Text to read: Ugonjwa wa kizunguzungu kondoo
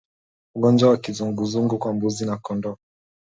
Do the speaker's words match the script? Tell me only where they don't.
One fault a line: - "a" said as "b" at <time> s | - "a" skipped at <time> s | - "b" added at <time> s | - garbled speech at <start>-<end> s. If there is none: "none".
- "kwa mbuzi na" added at 1.8 s